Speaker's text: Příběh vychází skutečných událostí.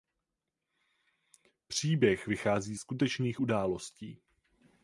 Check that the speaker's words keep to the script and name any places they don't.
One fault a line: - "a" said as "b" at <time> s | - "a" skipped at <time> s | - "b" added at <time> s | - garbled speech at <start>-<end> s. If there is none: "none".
none